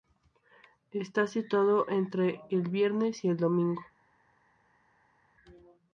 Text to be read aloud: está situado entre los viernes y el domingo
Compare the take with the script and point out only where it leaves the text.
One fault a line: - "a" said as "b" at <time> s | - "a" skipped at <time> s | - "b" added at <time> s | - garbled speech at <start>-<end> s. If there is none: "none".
- "los" said as "el" at 2.5 s